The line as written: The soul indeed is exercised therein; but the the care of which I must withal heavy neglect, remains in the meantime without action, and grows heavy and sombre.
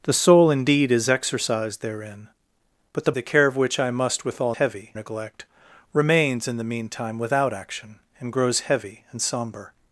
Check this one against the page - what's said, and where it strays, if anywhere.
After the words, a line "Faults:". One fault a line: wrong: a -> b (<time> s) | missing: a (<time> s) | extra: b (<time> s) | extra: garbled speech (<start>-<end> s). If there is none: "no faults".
The soul indeed is exercised therein; but the the care of which I must withal heavy neglect, remains in the meantime without action, and grows heavy and sombre.
Faults:
no faults